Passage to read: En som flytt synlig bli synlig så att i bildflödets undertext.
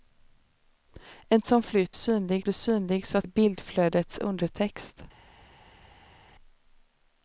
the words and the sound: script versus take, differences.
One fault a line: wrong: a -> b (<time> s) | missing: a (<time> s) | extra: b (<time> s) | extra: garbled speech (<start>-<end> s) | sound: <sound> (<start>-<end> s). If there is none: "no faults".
no faults